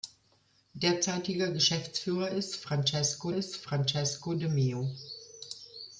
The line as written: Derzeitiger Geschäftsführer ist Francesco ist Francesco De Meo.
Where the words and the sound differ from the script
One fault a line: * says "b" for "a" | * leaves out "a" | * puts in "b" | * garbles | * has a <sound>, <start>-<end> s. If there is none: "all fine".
all fine